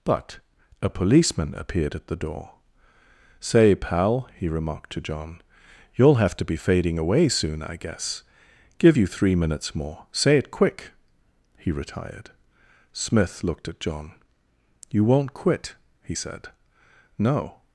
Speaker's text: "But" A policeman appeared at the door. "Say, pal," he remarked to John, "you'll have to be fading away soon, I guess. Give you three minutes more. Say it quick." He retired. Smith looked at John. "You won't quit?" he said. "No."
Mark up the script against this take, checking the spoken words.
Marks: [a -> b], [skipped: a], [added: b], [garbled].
"But" A policeman appeared at the door. "Say, pal," he remarked to John, "you'll have to be fading away soon, I guess. Give you three minutes more. Say it quick." He retired. Smith looked at John. "You won't quit?" he said. "No."